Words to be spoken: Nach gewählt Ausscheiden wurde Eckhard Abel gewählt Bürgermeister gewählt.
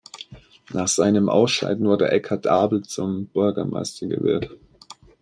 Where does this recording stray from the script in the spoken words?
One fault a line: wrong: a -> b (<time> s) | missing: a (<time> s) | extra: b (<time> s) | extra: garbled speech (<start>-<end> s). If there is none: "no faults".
wrong: gewählt -> seinem (0.9 s)
wrong: gewählt -> zum (2.8 s)